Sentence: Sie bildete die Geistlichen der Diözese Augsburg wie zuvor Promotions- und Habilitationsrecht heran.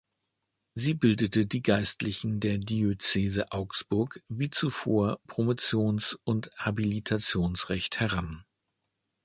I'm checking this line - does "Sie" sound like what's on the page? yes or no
yes